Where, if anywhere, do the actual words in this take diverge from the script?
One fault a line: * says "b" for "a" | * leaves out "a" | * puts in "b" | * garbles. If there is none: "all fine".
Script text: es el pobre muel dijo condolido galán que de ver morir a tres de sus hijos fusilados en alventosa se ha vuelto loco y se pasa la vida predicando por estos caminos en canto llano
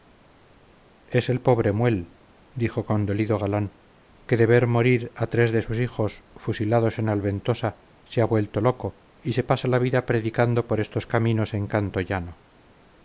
all fine